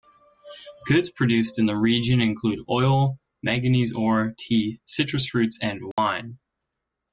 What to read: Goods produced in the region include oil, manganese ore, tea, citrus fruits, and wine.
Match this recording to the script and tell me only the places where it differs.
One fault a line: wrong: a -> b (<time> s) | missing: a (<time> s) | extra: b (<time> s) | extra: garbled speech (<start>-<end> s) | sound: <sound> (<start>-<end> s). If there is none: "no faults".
sound: dropout (5.9-6.0 s)